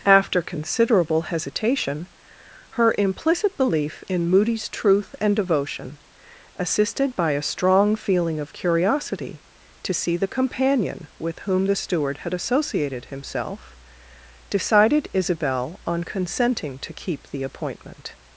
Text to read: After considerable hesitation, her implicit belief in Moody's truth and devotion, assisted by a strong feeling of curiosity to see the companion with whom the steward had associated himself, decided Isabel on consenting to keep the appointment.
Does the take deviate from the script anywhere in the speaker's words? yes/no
no